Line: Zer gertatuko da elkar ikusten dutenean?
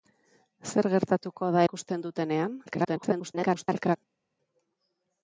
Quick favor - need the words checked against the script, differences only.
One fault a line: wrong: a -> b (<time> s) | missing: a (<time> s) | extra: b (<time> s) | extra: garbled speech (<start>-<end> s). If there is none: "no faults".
missing: elkar (1.6 s)
extra: garbled speech (2.7-4.0 s)